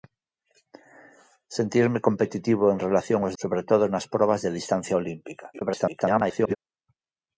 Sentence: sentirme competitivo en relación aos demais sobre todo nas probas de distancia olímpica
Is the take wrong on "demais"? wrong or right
wrong